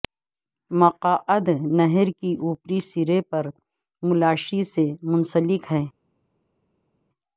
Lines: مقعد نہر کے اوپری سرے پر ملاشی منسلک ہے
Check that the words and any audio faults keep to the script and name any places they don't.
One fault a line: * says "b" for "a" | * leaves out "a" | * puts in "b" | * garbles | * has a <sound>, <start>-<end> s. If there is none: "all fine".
* puts in "سے"